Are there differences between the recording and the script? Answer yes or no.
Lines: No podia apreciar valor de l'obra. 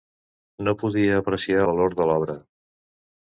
no